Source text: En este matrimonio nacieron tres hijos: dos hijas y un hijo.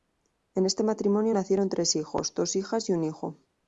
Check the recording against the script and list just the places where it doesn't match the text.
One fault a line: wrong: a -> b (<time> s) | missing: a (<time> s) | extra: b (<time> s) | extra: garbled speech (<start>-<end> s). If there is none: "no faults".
no faults